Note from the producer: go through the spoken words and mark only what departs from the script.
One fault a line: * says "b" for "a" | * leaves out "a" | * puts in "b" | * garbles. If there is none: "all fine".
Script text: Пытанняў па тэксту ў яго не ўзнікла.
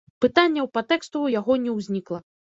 all fine